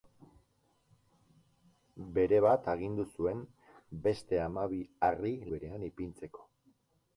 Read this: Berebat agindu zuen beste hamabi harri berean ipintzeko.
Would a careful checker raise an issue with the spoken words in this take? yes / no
no